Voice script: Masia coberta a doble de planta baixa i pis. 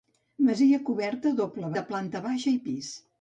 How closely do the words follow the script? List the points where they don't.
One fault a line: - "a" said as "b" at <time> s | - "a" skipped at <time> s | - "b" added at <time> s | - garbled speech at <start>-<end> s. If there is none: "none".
none